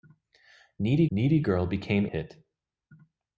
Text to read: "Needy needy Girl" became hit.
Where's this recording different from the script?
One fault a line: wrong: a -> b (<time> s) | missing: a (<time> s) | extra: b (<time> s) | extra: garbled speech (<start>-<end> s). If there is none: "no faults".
no faults